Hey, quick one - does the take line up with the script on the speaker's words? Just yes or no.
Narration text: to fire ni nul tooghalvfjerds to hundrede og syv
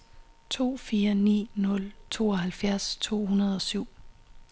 yes